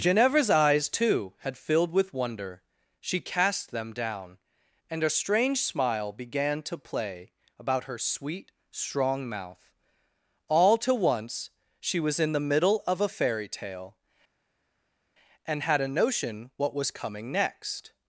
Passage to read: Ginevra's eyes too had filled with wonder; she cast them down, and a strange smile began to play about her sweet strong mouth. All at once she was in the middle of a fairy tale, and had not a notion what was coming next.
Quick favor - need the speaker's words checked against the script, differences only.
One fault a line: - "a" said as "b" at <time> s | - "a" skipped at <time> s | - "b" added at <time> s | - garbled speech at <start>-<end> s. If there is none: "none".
- "at" said as "to" at 10.8 s
- "not" skipped at 15.8 s